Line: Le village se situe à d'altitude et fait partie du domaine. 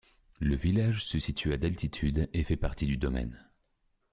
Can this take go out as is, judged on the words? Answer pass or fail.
pass